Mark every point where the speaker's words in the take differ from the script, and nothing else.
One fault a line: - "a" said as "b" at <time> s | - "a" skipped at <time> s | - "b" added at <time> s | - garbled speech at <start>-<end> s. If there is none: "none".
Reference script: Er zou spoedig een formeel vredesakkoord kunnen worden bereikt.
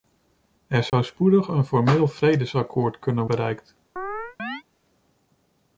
- "worden" skipped at 3.3 s